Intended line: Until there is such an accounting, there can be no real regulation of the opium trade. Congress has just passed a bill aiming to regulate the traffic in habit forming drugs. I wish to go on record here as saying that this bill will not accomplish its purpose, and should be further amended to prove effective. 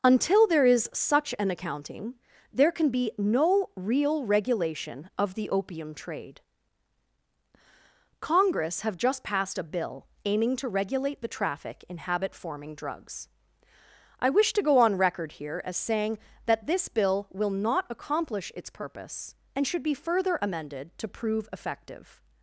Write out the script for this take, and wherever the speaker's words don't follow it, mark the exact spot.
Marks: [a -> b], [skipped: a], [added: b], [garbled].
Until there is such an accounting, there can be no real regulation of the opium trade. Congress [has -> have] just passed a bill aiming to regulate the traffic in habit forming drugs. I wish to go on record here as saying that this bill will not accomplish its purpose, and should be further amended to prove effective.